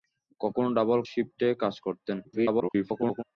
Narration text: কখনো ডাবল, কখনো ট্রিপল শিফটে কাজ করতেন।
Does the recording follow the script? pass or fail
fail